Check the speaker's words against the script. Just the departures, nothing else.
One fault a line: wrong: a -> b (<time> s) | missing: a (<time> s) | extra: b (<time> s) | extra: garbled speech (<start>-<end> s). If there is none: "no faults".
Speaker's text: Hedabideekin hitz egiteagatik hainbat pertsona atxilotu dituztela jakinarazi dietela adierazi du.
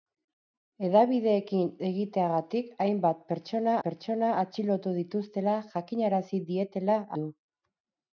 missing: hitz (1.7 s)
extra: pertsona (3.9 s)
missing: adierazi (7.0 s)